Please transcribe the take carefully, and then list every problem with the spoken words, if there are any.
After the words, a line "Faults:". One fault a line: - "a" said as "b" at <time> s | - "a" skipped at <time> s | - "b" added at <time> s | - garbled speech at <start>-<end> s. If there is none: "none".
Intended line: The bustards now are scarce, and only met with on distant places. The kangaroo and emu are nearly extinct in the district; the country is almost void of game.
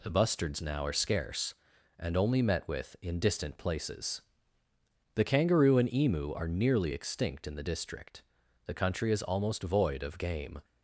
The bustards now are scarce, and only met with in distant places. The kangaroo and emu are nearly extinct in the district; the country is almost void of game.
Faults:
- "on" said as "in" at 3.0 s